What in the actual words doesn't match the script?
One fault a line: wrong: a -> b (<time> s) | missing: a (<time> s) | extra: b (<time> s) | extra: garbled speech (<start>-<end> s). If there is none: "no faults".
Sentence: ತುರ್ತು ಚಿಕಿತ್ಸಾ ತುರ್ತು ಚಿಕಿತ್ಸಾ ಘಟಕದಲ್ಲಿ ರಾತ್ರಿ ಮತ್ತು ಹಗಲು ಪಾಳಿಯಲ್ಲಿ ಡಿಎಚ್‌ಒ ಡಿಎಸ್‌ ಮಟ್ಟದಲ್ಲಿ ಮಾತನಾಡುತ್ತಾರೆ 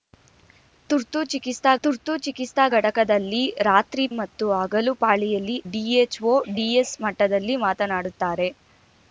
no faults